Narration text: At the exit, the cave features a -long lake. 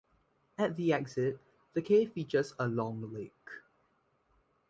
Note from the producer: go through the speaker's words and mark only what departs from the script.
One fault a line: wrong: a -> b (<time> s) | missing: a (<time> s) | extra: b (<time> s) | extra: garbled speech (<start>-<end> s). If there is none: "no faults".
no faults